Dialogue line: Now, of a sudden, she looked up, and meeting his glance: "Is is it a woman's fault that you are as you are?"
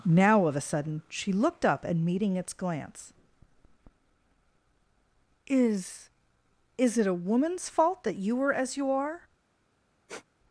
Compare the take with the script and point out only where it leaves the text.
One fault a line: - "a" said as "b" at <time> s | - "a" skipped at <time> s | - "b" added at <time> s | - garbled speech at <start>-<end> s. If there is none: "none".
- "his" said as "its" at 2.4 s
- "are" said as "were" at 8.3 s